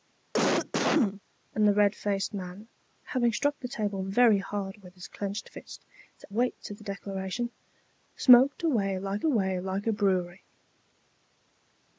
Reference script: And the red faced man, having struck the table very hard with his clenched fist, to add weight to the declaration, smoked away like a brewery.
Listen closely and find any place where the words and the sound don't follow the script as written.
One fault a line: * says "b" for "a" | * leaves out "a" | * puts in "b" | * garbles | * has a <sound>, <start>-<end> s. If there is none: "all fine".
* has a cough, 0.3-1.2 s
* leaves out "add"
* puts in "away like"